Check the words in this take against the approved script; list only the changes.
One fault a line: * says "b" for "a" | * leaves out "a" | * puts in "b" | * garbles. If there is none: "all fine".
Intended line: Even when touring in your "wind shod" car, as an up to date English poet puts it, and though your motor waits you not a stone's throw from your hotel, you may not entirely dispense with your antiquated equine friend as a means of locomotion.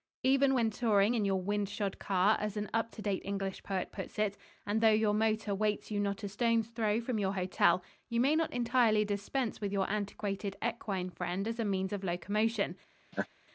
all fine